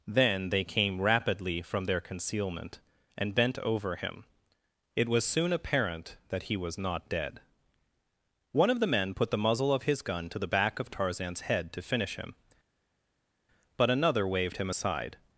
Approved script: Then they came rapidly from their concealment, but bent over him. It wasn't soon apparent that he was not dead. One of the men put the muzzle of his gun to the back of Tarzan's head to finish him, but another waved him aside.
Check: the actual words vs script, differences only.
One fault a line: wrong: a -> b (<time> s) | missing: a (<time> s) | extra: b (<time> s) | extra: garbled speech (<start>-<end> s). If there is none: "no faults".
wrong: but -> and (3.2 s)
wrong: wasn't -> was (5.1 s)